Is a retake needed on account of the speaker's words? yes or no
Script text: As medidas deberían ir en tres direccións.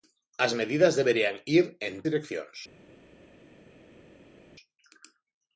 yes